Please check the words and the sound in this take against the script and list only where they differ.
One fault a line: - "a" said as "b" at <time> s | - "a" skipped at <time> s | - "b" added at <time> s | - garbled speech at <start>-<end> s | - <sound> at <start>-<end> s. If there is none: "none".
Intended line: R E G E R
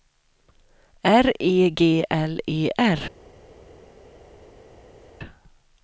- "L" added at 2.1 s